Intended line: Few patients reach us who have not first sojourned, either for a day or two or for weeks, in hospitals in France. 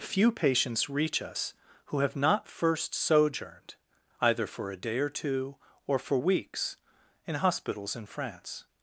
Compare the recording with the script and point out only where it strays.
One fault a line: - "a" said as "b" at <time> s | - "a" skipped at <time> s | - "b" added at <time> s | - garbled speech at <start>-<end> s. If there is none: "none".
none